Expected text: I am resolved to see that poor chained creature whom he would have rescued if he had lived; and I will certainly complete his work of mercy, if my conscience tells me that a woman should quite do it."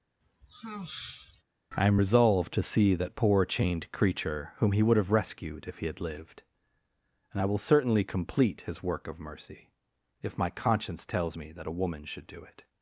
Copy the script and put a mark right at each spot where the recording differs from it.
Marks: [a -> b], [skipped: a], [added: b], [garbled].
I am resolved to see that poor chained creature whom he would have rescued if he had lived; and I will certainly complete his work of mercy, if my conscience tells me that a woman should [skipped: quite] do it."